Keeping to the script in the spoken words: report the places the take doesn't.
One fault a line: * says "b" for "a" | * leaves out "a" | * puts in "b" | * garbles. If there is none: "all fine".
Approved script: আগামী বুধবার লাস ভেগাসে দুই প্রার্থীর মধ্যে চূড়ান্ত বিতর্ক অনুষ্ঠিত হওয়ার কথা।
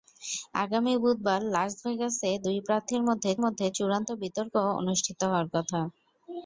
* puts in "মধ্যে"